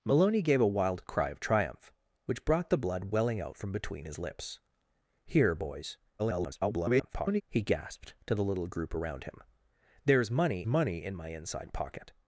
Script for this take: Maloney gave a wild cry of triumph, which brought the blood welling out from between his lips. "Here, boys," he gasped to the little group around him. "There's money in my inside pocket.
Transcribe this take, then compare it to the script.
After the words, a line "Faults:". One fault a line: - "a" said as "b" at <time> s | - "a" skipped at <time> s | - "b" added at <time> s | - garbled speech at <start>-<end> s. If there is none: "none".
Maloney gave a wild cry of triumph, which brought the blood welling out from between his lips. "Here, boys," [garbled] he gasped to the little group around him. "There's money money in my inside pocket.
Faults:
- garbled speech at 6.2-7.4 s
- "money" added at 10.7 s